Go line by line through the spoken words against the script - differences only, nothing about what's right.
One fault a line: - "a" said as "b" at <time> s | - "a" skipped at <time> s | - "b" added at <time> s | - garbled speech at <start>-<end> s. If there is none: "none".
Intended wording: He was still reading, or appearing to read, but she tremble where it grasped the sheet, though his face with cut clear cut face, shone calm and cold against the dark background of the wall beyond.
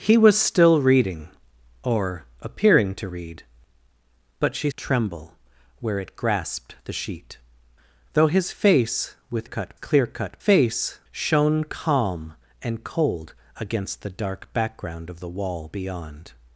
none